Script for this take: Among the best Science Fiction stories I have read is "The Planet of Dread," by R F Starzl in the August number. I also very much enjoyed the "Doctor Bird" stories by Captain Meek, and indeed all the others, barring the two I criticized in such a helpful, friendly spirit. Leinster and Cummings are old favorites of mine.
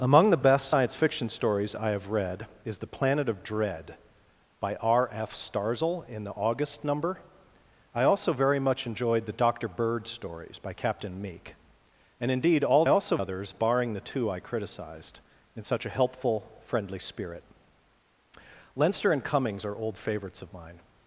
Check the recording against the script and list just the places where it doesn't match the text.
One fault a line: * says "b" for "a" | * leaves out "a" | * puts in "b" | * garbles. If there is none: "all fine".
* says "also" for "the"